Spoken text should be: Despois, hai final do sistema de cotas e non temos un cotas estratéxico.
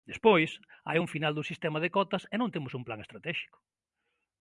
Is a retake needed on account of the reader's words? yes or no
yes